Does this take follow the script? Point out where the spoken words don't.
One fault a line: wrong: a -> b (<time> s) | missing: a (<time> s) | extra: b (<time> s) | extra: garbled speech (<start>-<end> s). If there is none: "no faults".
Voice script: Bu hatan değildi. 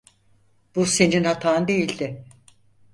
extra: senin (0.8 s)